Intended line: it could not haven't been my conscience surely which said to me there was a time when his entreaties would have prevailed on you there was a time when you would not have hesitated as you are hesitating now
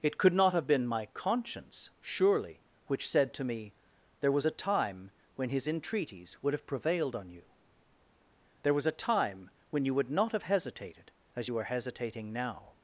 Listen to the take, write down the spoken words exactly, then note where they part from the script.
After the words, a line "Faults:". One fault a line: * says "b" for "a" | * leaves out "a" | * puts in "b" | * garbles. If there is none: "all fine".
it could not have been my conscience surely which said to me there was a time when his entreaties would have prevailed on you there was a time when you would not have hesitated as you are hesitating now
Faults:
* says "have" for "haven't"